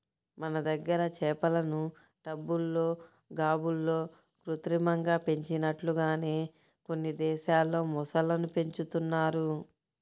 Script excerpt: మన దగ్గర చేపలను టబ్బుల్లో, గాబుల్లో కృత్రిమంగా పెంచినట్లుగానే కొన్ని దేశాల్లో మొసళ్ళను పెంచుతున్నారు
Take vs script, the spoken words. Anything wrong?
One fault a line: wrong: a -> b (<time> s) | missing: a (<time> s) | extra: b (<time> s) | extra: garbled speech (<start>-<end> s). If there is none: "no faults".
no faults